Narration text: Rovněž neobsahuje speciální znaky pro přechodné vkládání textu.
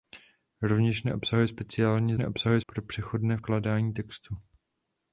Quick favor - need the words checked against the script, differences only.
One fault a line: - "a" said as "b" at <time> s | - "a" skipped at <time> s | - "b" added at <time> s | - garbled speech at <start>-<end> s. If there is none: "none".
- "znaky" said as "neobsahuje" at 2.2 s